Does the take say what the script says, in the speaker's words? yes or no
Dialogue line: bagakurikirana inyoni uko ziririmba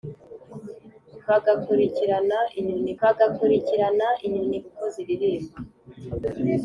no